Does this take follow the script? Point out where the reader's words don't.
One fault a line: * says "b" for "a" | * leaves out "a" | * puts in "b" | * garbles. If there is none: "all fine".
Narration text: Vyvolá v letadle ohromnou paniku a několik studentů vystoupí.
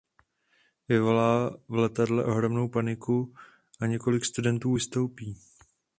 all fine